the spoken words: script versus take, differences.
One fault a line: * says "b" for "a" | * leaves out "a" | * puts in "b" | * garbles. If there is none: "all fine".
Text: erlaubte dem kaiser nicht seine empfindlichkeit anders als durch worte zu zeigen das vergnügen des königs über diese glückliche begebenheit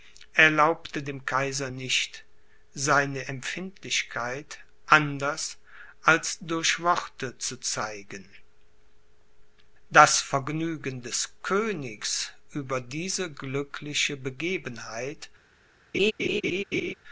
all fine